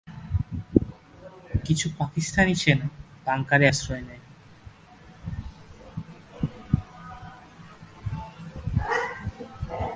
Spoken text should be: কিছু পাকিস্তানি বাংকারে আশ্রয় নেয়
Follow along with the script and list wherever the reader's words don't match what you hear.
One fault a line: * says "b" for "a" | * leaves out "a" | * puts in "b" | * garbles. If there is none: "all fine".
* puts in "সেনা"